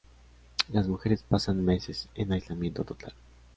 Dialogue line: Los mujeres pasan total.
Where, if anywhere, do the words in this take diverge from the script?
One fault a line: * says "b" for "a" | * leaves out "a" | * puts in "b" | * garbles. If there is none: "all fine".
* says "Las" for "Los"
* puts in "meses en aislamiento"